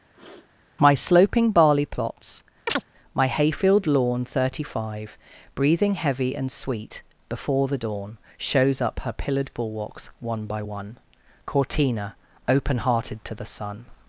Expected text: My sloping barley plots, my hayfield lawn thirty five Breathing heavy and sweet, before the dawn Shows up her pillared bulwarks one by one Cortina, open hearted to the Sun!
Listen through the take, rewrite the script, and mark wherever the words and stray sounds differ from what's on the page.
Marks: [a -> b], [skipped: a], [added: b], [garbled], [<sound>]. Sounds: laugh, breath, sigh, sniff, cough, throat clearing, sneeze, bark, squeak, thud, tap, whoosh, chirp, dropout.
[sniff] My sloping barley plots, [chirp] my hayfield lawn thirty five Breathing heavy and sweet, before the dawn Shows up her pillared bulwarks one by one Cortina, open hearted to the Sun!